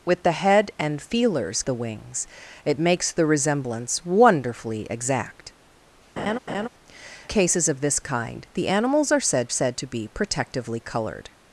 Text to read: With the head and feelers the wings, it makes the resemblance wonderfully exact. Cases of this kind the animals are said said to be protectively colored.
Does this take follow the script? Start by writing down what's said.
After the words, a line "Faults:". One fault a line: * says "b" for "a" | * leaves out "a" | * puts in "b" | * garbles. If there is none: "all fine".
With the head and feelers the wings, it makes the resemblance wonderfully exact. Cases of this kind the animals are said said to be protectively colored.
Faults:
all fine